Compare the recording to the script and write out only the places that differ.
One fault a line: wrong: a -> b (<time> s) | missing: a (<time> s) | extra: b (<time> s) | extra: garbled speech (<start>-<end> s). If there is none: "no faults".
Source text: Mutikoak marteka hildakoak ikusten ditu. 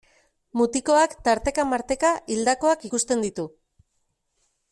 extra: tarteka (1.2 s)